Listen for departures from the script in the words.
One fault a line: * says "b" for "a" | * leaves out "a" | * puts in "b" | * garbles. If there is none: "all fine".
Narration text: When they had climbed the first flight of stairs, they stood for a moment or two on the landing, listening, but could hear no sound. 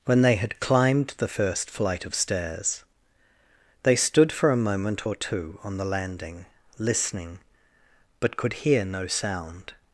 all fine